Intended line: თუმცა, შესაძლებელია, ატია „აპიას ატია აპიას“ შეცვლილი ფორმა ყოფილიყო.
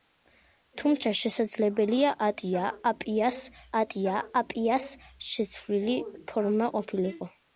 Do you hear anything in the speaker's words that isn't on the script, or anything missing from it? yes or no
no